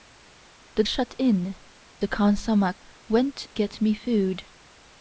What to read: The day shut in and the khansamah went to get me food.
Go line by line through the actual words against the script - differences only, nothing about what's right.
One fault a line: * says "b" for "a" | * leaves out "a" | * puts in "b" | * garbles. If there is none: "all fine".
* leaves out "day"
* leaves out "and"
* leaves out "to"